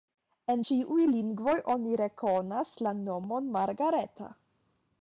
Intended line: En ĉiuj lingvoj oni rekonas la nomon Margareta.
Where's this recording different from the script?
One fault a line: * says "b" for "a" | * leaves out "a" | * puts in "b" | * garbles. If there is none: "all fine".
all fine